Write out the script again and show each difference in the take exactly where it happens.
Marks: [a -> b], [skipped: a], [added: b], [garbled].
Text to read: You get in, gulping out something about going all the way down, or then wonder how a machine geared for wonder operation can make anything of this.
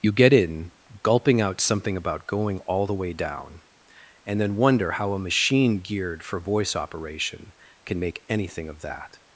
You get in, gulping out something about going all the way down, [or -> and] then wonder how a machine geared for [wonder -> voice] operation can make anything of [this. -> that]